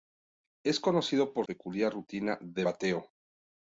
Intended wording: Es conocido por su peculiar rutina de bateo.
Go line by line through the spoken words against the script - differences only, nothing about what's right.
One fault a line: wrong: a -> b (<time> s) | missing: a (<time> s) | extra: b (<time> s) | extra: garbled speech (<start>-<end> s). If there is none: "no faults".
missing: su (1.4 s)